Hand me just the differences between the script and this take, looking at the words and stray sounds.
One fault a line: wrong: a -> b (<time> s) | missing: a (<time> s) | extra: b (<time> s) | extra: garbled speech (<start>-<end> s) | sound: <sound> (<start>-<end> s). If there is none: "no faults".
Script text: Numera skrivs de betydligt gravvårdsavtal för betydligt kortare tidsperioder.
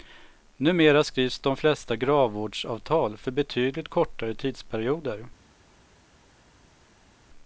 wrong: betydligt -> flesta (1.6 s)